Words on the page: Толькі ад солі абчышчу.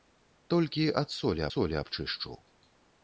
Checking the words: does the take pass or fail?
fail